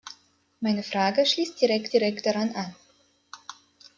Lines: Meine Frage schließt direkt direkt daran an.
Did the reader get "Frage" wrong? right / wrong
right